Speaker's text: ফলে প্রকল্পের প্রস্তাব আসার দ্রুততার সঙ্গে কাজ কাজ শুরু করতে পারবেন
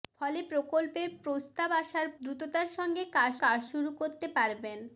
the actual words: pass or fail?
pass